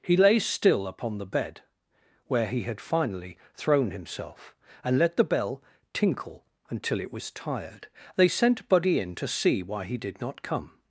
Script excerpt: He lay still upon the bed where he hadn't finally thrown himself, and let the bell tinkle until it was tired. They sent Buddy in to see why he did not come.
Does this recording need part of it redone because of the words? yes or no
yes